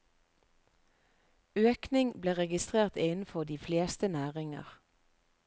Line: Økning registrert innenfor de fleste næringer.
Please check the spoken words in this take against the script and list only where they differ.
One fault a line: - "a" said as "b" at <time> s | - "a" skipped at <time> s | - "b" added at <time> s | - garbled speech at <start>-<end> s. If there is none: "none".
- "ble" added at 2.2 s